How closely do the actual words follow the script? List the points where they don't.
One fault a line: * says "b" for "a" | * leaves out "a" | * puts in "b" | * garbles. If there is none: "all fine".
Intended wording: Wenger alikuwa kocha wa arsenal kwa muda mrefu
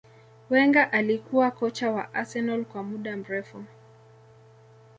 all fine